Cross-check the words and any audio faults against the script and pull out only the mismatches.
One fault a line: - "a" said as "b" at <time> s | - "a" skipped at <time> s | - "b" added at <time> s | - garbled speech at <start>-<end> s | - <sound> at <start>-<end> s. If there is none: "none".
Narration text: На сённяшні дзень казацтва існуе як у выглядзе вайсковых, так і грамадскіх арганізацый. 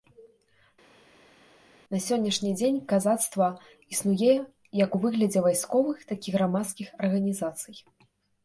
none